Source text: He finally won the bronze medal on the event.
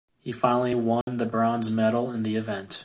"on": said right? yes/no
no